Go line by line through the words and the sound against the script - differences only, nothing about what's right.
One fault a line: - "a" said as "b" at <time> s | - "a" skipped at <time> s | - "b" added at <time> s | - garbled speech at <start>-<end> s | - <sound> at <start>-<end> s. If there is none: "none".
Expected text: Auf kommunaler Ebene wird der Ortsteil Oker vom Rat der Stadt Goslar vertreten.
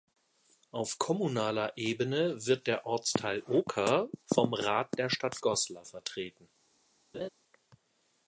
- laugh at 7.1-7.3 s